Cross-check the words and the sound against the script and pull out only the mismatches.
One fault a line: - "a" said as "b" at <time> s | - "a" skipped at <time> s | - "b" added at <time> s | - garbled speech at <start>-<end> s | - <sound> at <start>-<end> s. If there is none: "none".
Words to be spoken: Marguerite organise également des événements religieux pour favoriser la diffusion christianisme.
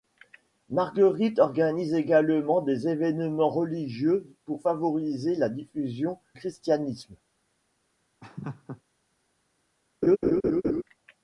- laugh at 8.2-8.8 s
- laugh at 10.0-10.8 s